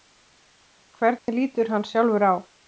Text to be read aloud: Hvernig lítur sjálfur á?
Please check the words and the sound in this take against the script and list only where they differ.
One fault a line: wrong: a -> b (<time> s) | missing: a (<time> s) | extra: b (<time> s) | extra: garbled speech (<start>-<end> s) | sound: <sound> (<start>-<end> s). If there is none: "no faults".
sound: dropout (1.2-1.3 s)
extra: hann (1.8 s)